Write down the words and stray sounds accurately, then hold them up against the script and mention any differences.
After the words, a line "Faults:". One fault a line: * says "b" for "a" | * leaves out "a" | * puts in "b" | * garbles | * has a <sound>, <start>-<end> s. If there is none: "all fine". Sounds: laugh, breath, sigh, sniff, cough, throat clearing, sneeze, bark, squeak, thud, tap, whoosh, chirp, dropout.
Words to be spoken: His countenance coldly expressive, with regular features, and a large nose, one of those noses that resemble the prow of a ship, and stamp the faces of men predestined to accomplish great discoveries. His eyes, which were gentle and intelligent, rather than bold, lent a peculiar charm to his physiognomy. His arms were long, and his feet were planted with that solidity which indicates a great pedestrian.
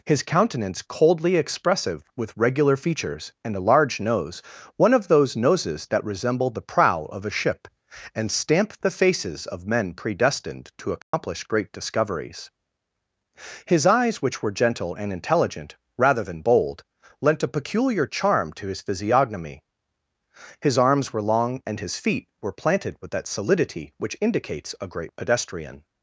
His countenance coldly expressive, with regular features, and a large nose, one of those noses that resemble the prow of a ship, and stamp the faces of men predestined to accomplish great discoveries. His eyes, which were gentle and intelligent, rather than bold, lent a peculiar charm to his physiognomy. His arms were long, and his feet were planted with that solidity which indicates a great pedestrian.
Faults:
* has a dropout, 11.0-11.1 s